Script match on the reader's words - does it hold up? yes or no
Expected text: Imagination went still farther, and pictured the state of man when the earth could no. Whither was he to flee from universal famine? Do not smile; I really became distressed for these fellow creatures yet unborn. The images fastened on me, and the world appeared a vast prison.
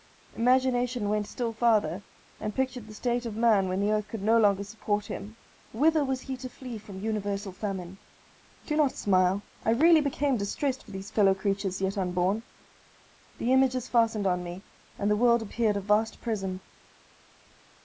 no